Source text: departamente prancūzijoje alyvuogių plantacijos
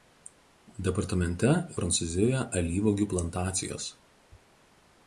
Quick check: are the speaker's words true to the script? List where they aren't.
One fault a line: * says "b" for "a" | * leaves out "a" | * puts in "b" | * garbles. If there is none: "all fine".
all fine